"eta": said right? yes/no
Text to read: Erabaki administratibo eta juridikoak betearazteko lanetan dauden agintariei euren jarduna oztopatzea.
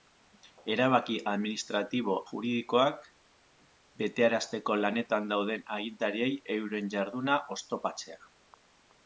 no